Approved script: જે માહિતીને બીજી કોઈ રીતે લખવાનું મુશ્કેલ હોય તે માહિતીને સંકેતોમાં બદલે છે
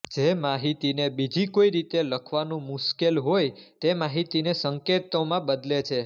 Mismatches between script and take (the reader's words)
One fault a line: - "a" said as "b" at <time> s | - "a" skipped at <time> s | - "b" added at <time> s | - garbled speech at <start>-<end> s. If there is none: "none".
none